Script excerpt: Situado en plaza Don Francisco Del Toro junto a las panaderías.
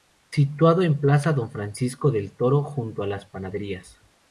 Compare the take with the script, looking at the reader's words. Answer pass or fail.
pass